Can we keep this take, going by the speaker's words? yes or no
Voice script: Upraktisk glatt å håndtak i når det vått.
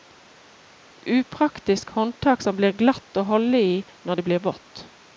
no